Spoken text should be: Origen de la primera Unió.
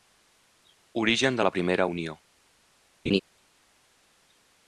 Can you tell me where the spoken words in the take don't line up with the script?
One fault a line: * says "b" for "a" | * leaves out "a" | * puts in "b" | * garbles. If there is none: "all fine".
all fine